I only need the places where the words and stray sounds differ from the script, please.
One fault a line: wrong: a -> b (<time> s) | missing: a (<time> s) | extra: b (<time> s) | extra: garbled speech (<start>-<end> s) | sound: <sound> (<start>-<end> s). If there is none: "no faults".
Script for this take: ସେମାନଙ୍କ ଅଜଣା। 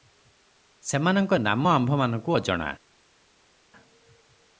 extra: ନାମ ଆମ୍ଭମାନଙ୍କୁ (1.4 s)